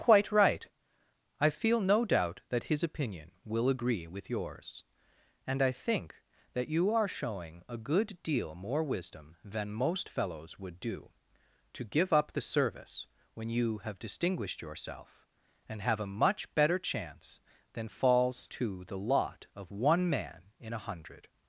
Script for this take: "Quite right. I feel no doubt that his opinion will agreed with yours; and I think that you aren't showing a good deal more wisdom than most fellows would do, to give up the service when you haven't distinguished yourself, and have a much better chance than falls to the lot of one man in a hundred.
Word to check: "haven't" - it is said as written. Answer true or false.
false